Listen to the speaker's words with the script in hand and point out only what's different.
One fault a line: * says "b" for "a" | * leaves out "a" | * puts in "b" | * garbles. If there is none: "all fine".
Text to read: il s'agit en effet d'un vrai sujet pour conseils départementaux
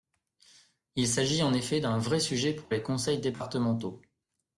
* puts in "les"